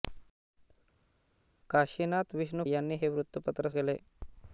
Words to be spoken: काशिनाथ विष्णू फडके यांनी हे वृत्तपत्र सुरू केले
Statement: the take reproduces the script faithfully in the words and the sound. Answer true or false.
false